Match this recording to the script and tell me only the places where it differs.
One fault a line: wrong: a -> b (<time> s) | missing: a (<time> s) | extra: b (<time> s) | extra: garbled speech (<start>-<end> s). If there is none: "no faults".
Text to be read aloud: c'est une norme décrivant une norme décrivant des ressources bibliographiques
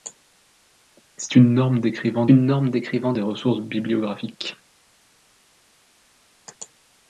no faults